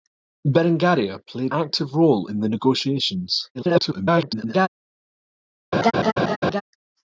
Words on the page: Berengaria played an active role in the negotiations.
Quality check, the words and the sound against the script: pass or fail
fail